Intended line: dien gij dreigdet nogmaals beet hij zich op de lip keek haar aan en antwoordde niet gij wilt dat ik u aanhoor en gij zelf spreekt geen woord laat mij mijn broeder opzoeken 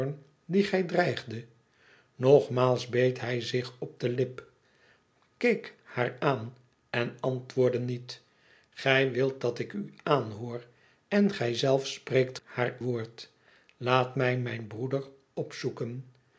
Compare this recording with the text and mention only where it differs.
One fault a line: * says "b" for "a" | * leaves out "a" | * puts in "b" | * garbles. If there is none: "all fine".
* says "haar" for "geen"